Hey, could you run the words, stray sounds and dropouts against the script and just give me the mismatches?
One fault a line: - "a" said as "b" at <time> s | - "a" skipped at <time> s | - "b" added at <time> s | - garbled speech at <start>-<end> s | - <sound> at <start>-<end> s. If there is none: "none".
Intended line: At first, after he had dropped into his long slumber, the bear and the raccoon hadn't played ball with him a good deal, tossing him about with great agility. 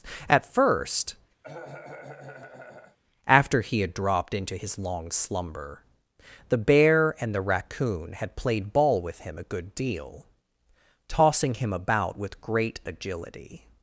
- cough at 1.4-3.0 s
- "hadn't" said as "had" at 8.1 s